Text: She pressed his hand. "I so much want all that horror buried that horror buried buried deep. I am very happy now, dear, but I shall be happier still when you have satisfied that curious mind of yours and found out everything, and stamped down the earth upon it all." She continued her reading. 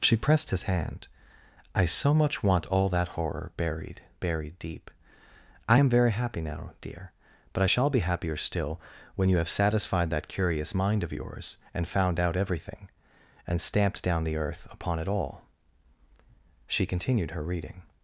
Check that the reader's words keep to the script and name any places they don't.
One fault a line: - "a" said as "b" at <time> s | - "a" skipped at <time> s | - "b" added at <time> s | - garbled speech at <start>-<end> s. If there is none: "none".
- "that horror buried" skipped at 4.0 s